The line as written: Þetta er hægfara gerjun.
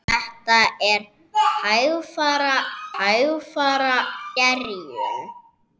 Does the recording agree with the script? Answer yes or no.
no